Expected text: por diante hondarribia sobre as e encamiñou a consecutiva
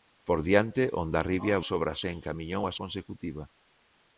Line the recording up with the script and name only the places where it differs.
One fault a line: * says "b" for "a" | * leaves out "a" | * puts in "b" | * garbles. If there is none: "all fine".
all fine